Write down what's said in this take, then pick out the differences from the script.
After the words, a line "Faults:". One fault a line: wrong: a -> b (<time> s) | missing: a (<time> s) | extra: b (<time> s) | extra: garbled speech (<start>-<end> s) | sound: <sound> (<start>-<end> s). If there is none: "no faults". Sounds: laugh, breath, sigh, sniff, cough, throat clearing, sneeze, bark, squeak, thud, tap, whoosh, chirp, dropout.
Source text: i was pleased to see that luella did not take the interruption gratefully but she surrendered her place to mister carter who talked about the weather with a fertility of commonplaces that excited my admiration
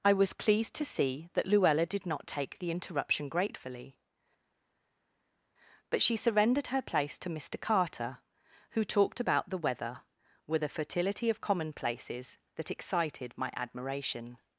i was pleased to see that luella did not take the interruption gratefully but she surrendered her place to mister carter who talked about the weather with a fertility of commonplaces that excited my admiration
Faults:
no faults